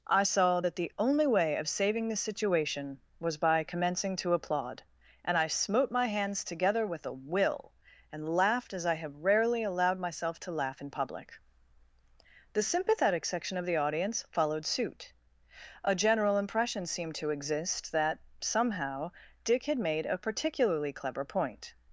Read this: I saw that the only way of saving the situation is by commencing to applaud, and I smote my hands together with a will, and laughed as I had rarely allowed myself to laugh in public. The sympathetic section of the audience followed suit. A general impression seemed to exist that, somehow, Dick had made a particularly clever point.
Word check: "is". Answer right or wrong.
wrong